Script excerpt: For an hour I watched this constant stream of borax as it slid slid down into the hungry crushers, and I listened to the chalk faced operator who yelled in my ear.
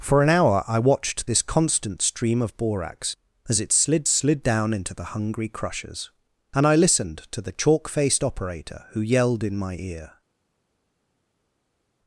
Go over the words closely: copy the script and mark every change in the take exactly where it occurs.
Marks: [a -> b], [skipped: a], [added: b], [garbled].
For an hour I watched this constant stream of borax as it slid slid down into the hungry crushers, and I listened to the chalk faced operator who yelled in my ear.